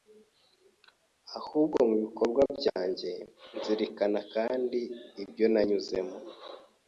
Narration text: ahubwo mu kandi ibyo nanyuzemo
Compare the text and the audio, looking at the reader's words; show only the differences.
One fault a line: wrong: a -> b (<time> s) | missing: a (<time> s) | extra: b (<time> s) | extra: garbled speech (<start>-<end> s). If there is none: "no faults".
extra: bikorwa byanjye Nzirikana (2.0 s)